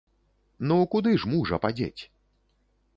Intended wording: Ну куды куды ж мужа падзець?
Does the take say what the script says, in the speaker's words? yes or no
no